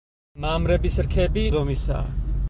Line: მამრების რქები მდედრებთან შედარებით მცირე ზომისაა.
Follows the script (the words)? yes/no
no